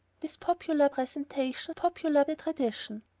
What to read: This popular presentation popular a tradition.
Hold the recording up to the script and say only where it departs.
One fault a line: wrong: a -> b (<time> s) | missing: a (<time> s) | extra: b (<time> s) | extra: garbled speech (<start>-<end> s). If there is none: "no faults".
no faults